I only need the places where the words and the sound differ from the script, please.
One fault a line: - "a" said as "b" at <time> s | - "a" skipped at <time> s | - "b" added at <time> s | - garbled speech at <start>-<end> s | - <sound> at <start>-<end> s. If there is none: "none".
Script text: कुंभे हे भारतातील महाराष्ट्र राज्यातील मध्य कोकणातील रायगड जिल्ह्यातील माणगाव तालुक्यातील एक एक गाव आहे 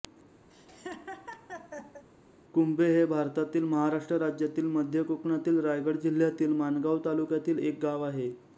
- laugh at 0.5-2.0 s
- "एक" skipped at 7.8 s